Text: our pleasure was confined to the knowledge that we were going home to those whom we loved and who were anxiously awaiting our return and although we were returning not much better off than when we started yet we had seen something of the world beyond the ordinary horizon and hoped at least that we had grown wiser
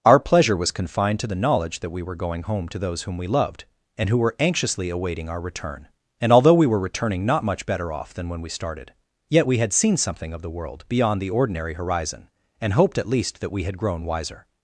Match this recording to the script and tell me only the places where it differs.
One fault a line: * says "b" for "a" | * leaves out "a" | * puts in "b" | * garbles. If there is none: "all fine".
all fine